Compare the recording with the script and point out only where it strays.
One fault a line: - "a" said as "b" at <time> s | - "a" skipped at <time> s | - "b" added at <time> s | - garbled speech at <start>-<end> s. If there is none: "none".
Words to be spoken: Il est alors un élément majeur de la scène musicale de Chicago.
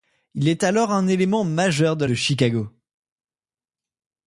- "la scène musicale" skipped at 2.0 s